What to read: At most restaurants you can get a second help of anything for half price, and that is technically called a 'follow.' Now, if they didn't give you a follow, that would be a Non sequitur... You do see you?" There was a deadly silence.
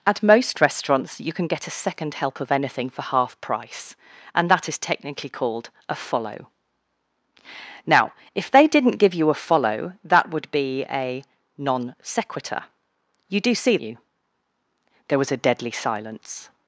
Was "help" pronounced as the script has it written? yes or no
yes